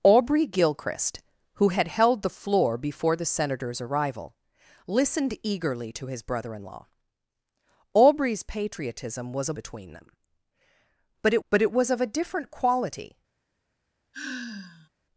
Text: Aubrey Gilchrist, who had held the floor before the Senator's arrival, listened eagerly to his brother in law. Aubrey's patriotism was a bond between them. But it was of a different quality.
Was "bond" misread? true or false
true